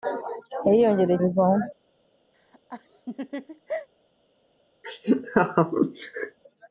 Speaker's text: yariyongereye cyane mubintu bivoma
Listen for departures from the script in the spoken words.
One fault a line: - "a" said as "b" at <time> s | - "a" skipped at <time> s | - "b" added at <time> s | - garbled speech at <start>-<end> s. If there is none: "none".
- "cyane mubintu" skipped at 1.2 s